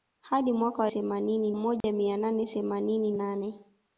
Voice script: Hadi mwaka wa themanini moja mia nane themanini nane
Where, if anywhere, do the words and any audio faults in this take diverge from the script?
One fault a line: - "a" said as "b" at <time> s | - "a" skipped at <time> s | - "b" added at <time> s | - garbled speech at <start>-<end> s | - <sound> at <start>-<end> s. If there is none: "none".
- dropout at 1.8-1.8 s